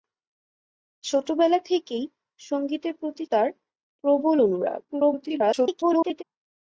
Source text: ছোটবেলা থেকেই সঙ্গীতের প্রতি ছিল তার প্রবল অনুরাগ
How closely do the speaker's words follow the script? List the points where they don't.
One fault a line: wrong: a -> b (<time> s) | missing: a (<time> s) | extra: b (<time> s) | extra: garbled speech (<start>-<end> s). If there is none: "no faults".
missing: ছিল (3.2 s)
extra: garbled speech (4.9-6.2 s)